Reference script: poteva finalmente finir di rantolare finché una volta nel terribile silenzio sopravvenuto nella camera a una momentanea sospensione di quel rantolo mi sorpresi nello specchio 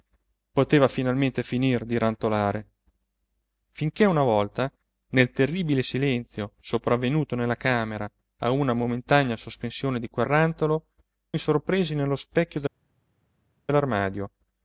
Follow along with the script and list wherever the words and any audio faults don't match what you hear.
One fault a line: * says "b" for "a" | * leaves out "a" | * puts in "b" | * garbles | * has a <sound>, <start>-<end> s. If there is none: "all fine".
all fine